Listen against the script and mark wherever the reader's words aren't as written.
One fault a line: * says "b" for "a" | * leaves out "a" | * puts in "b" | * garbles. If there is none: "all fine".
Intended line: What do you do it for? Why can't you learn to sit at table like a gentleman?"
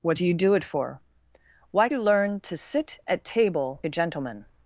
* leaves out "can't"
* leaves out "like"